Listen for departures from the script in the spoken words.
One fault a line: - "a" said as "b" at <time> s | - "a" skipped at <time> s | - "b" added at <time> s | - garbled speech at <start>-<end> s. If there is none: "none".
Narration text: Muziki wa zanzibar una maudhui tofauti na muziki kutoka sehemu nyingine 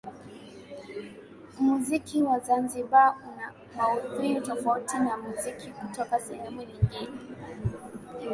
none